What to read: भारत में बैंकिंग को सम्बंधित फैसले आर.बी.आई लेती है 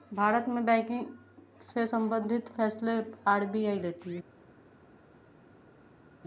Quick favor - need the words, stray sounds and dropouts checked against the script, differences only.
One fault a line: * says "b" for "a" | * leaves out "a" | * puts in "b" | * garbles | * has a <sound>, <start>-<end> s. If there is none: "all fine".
* says "से" for "को"